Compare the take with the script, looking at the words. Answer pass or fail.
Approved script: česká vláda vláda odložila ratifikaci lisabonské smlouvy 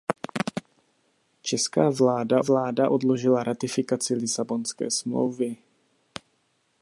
pass